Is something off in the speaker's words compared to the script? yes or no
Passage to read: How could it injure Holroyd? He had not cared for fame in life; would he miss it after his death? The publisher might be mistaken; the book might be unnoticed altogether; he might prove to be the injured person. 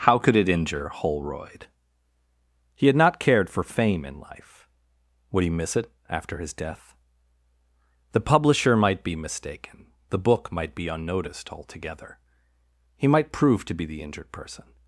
no